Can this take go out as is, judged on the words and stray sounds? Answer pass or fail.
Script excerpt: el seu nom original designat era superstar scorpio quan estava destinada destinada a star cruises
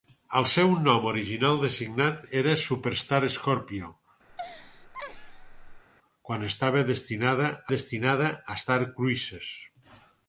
fail